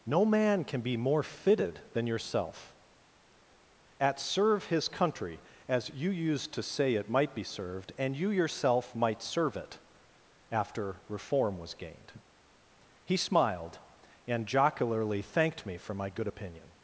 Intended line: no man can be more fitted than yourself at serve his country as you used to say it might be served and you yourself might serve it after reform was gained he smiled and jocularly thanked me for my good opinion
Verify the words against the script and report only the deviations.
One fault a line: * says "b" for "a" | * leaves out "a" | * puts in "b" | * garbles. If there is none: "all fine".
all fine